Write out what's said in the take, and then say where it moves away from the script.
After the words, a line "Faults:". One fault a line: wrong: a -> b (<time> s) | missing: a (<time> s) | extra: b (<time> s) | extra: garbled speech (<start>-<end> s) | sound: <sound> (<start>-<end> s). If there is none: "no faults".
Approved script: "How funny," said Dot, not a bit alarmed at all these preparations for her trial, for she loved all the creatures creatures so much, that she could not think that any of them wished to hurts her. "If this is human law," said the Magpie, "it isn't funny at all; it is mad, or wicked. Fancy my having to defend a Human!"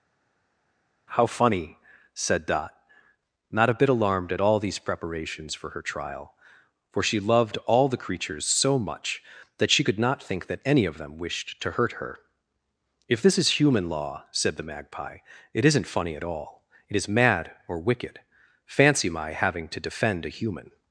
"How funny," said Dot, not a bit alarmed at all these preparations for her trial, for she loved all the creatures so much, that she could not think that any of them wished to hurt her. "If this is human law," said the Magpie, "it isn't funny at all; it is mad, or wicked. Fancy my having to defend a Human!"
Faults:
missing: creatures (8.4 s)
wrong: hurts -> hurt (11.7 s)